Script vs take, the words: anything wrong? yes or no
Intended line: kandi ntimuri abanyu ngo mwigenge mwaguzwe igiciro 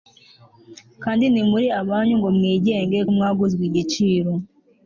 no